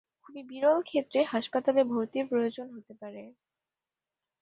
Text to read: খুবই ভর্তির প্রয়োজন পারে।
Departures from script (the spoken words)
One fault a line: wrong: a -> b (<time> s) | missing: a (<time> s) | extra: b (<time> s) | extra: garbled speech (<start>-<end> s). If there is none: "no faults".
extra: বিরল ক্ষেত্রে হাসপাতালে (0.5 s)
extra: হতে (2.8 s)